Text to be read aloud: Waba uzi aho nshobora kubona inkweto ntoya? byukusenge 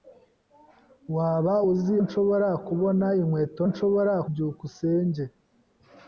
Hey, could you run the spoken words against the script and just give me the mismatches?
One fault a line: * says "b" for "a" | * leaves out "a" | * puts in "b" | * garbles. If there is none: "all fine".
* leaves out "aho"
* says "nshobora" for "ntoya"